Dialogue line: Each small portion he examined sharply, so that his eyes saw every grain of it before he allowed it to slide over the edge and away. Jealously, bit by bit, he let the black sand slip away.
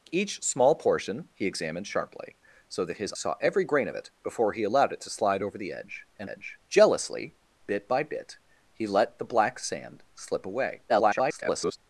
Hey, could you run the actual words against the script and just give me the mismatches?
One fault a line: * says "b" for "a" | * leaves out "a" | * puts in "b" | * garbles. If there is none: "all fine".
* leaves out "eyes"
* says "edge" for "away"
* garbles